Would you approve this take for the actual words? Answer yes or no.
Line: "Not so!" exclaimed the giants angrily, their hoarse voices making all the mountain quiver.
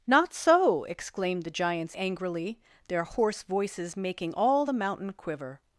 yes